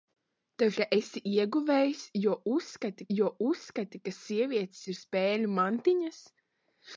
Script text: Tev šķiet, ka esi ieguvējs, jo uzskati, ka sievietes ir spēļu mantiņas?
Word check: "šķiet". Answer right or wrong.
wrong